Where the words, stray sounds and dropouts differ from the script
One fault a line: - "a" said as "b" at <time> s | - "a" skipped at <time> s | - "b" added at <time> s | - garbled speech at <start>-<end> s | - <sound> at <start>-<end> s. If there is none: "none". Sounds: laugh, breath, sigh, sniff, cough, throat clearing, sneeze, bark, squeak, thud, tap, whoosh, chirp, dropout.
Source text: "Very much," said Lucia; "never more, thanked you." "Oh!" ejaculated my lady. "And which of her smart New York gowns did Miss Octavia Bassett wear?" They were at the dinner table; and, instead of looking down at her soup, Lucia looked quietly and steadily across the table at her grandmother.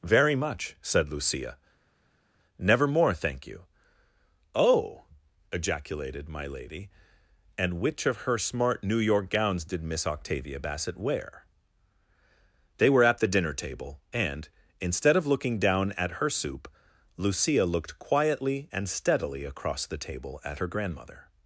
- "thanked" said as "thank" at 3.1 s